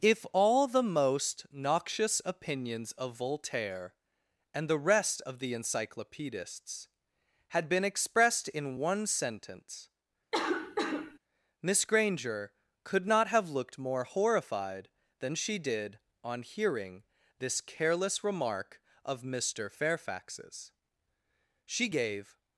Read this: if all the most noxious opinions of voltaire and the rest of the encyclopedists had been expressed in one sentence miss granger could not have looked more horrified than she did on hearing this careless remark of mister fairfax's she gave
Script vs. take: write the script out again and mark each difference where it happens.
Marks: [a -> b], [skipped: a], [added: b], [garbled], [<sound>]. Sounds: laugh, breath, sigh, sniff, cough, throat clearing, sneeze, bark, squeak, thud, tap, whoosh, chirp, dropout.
if all the most noxious opinions of voltaire and the rest of the encyclopedists had been expressed in one sentence [cough] miss granger could not have looked more horrified than she did on hearing this careless remark of mister fairfax's she gave